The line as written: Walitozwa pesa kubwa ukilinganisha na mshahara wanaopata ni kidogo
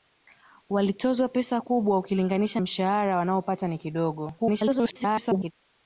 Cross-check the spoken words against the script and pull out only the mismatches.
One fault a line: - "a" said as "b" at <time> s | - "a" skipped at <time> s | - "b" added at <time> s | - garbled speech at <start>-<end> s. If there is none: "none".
- "na" skipped at 2.6 s
- garbled speech at 4.4-5.5 s